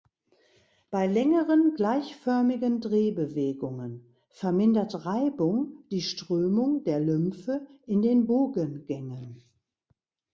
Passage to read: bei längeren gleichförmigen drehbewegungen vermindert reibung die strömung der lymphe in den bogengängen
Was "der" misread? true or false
false